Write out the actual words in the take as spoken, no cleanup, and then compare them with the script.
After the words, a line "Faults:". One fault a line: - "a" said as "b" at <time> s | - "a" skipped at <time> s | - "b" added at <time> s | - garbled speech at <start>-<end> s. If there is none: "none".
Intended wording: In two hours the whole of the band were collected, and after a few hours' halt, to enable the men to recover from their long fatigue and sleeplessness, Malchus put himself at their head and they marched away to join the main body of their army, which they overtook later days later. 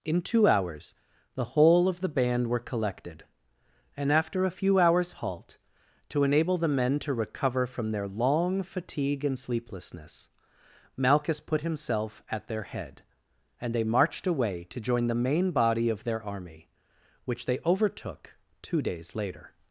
In two hours the whole of the band were collected, and after a few hours' halt, to enable the men to recover from their long fatigue and sleeplessness, Malchus put himself at their head and they marched away to join the main body of their army, which they overtook two days later.
Faults:
- "later" said as "two" at 18.6 s